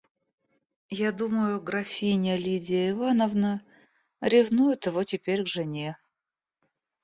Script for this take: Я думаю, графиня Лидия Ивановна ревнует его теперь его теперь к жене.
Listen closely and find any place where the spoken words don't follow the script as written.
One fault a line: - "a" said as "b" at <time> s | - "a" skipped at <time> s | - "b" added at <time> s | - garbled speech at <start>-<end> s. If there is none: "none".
- "его теперь" skipped at 5.4 s